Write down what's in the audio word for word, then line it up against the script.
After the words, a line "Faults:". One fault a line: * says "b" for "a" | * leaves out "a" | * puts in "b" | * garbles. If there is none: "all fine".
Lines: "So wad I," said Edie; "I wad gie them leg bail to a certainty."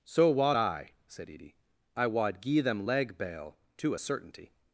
"So wad I," said Edie; "I wad gie them leg bail to a certainty."
Faults:
all fine